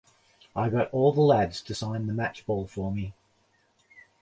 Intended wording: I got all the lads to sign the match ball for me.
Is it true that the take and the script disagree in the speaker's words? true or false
false